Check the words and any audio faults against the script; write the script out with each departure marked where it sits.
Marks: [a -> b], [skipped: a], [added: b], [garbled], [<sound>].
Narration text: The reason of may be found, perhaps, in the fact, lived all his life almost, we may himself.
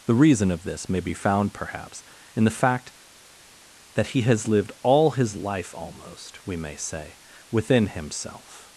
The reason of [added: this] may be found, perhaps, in the fact, [added: that he has] lived all his life almost, we may [added: say within] himself.